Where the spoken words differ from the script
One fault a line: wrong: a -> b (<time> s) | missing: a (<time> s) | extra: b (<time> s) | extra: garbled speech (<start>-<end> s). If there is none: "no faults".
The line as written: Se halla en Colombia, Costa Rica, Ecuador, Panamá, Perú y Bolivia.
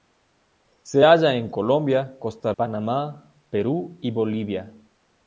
missing: Rica Ecuador (2.5 s)